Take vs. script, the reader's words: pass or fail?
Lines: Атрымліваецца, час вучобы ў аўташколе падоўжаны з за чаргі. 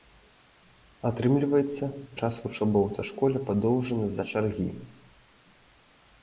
pass